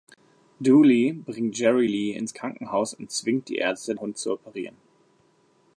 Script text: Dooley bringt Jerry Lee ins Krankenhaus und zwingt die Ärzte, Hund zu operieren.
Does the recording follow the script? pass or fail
pass